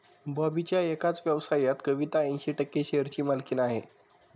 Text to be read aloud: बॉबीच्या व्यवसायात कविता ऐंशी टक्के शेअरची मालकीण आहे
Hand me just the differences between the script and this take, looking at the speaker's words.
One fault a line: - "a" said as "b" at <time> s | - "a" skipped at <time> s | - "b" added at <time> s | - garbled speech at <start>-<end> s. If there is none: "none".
- "एकाच" added at 0.8 s